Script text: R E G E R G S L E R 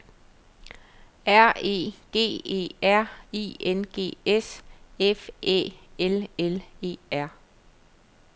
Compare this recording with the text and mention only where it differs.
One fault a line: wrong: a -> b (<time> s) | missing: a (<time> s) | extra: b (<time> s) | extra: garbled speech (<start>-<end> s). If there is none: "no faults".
extra: I N (3.3 s)
extra: F Æ L (5.0 s)